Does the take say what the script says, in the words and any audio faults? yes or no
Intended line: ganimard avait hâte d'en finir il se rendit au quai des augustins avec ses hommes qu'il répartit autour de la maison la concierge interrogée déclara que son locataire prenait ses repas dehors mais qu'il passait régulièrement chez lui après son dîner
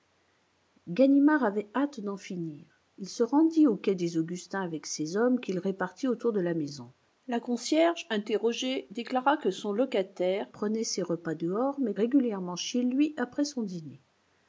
no